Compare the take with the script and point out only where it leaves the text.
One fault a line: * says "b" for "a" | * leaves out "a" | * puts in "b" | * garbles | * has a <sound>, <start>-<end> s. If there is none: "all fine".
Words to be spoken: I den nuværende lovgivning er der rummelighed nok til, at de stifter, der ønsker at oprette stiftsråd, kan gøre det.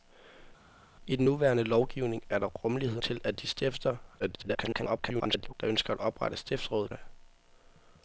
* leaves out "nok"
* garbles
* leaves out "kan gøre"